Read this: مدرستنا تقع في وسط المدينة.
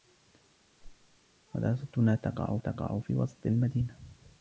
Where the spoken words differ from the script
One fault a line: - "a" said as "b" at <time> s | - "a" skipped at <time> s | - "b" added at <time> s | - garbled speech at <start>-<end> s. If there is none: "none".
- "تقع" added at 2.6 s